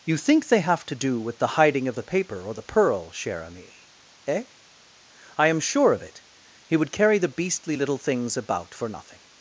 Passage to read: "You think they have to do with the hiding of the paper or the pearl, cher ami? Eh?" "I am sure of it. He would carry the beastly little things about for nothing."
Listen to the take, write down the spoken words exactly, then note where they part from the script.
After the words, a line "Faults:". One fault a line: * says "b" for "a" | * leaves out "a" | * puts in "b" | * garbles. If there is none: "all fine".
"You think they have to do with the hiding of the paper or the pearl, cher ami? Eh?" "I am sure of it. He would carry the beastly little things about for nothing."
Faults:
all fine